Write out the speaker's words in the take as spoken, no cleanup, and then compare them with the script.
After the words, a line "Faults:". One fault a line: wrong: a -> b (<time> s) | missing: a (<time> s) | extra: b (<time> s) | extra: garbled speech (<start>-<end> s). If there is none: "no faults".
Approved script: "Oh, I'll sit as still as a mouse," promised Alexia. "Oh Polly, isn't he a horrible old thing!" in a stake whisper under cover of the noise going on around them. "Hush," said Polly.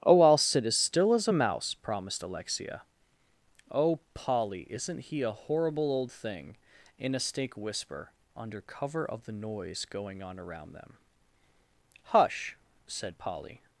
"Oh, I'll sit as still as a mouse," promised Alexia. "Oh Polly, isn't he a horrible old thing!" in a stake whisper under cover of the noise going on around them. "Hush," said Polly.
Faults:
no faults